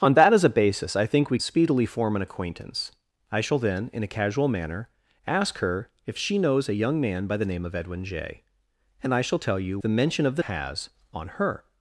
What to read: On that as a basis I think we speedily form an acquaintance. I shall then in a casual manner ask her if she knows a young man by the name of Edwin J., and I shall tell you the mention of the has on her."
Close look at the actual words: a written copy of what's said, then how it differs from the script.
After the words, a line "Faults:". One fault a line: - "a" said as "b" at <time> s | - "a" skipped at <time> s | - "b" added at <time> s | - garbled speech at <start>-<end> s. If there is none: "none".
On that as a basis I think we speedily form an acquaintance. I shall then in a casual manner ask her if she knows a young man by the name of Edwin J., and I shall tell you the mention of the has on her."
Faults:
none